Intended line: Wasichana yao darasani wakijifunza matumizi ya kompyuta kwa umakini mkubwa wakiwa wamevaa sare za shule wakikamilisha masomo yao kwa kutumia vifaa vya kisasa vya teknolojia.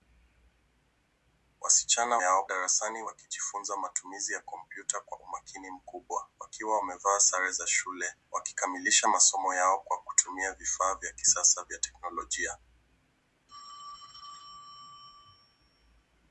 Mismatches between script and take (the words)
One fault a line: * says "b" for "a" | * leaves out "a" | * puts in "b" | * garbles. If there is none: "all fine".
all fine